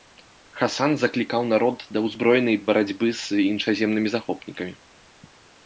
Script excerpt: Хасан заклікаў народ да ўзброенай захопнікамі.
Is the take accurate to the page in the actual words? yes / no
no